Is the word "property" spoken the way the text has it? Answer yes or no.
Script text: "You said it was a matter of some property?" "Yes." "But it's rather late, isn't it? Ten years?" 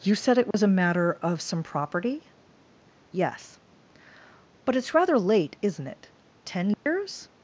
yes